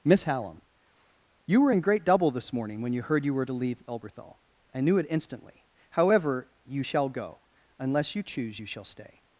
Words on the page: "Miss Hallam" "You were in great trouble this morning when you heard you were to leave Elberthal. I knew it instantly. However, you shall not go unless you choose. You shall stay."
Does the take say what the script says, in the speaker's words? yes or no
no